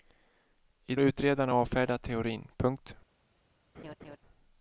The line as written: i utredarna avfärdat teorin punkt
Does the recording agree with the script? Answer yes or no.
yes